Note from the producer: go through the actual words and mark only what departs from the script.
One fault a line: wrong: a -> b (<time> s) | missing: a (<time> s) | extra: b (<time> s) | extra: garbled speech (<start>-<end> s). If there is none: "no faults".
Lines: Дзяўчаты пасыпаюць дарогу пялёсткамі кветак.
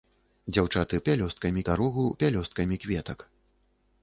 wrong: пасыпаюць -> пялёсткамі (1.1 s)